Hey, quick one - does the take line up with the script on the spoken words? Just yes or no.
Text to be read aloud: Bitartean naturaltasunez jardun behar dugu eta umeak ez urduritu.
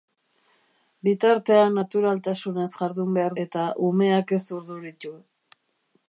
no